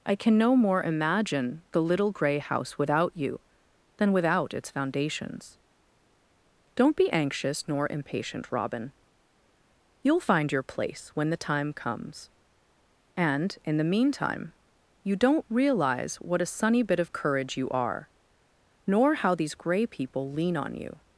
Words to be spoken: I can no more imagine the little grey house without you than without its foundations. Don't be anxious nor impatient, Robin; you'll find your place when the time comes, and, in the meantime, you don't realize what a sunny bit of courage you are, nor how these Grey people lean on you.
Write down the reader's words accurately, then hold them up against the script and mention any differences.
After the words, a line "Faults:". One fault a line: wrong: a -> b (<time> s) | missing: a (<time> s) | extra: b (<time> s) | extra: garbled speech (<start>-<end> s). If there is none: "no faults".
I can no more imagine the little grey house without you than without its foundations. Don't be anxious nor impatient, Robin; you'll find your place when the time comes, and, in the meantime, you don't realize what a sunny bit of courage you are, nor how these Grey people lean on you.
Faults:
no faults